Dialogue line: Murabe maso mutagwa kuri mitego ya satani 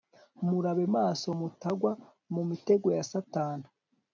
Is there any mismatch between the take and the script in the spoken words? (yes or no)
yes